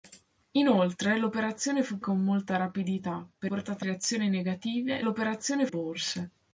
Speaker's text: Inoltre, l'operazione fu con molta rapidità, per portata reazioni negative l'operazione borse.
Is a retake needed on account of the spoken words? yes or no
no